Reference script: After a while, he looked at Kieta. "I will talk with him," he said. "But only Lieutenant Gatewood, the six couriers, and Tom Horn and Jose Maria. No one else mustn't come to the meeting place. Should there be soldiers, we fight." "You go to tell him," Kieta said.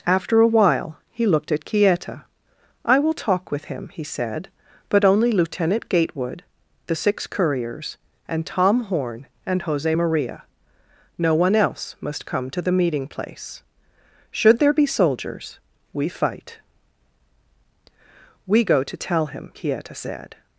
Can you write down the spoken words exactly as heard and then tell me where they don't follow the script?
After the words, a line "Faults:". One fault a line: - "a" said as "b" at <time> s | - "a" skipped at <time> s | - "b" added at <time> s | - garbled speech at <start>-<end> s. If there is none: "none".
After a while, he looked at Kieta. "I will talk with him," he said. "But only Lieutenant Gatewood, the six couriers, and Tom Horn and Jose Maria. No one else must come to the meeting place. Should there be soldiers, we fight." "We go to tell him," Kieta said.
Faults:
- "mustn't" said as "must" at 12.0 s
- "You" said as "We" at 18.5 s